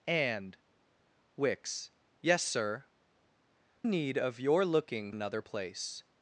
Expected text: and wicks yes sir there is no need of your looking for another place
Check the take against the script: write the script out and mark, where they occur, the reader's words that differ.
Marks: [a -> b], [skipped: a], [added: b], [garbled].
and wicks yes sir [skipped: there is no] need of your looking [skipped: for] another place